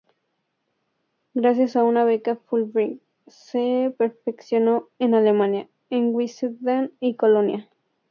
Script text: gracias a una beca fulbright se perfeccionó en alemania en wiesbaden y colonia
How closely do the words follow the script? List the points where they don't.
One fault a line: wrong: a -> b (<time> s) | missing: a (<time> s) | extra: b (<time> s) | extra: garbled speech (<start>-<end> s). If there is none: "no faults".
no faults